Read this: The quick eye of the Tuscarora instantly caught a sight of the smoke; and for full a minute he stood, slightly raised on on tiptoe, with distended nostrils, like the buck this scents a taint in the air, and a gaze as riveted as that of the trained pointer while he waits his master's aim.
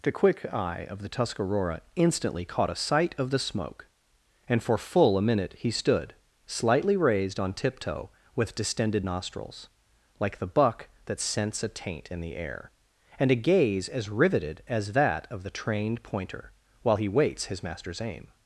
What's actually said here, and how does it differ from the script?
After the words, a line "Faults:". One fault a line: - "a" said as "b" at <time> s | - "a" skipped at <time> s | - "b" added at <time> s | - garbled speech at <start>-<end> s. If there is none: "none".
The quick eye of the Tuscarora instantly caught a sight of the smoke; and for full a minute he stood, slightly raised on tiptoe, with distended nostrils, like the buck that scents a taint in the air, and a gaze as riveted as that of the trained pointer while he waits his master's aim.
Faults:
- "on" skipped at 7.5 s
- "this" said as "that" at 11.1 s